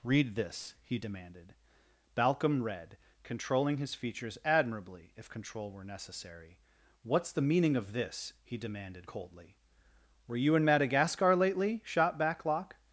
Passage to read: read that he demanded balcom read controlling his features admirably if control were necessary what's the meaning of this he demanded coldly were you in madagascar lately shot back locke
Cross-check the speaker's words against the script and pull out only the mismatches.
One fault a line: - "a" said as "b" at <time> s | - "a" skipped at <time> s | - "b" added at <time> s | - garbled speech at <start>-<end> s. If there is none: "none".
- "that" said as "this" at 0.3 s